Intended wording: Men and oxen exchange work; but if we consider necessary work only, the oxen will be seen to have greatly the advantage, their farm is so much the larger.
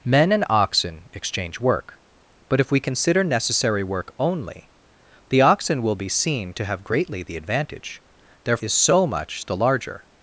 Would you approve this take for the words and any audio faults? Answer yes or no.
no